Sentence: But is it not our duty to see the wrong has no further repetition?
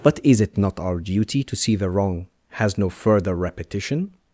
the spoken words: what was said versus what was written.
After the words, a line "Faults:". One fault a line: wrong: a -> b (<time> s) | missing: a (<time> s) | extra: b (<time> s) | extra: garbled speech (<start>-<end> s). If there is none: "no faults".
But is it not our duty to see the wrong has no further repetition?
Faults:
no faults